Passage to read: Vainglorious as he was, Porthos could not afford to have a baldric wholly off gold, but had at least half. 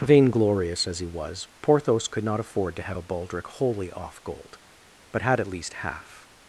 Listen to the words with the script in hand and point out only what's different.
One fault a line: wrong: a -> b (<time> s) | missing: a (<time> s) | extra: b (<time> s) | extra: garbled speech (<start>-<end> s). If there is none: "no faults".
no faults